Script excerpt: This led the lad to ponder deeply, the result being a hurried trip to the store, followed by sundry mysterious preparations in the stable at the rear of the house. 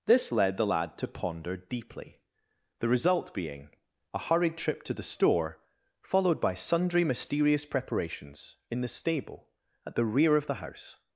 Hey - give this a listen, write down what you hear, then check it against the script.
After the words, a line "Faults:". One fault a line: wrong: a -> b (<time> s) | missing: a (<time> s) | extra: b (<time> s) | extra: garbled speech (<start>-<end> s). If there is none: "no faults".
This led the lad to ponder deeply, the result being a hurried trip to the store, followed by sundry mysterious preparations in the stable at the rear of the house.
Faults:
no faults